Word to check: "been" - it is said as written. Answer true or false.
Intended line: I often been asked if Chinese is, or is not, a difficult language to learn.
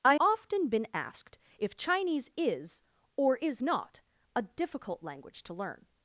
true